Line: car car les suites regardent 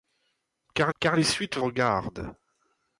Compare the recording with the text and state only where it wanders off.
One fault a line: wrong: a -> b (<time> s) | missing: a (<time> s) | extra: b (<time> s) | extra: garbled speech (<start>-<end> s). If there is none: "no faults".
no faults